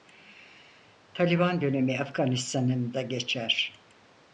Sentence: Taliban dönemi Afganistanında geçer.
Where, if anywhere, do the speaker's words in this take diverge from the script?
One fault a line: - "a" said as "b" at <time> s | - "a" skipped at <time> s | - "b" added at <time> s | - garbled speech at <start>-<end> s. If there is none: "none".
none